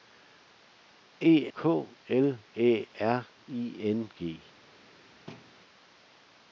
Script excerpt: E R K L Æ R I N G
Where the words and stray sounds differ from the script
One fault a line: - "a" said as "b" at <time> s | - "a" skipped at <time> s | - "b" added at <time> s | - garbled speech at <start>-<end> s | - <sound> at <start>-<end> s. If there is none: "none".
- "R" skipped at 1.3 s
- thud at 5.3-5.5 s